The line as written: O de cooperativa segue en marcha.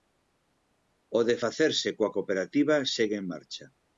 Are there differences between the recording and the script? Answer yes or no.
yes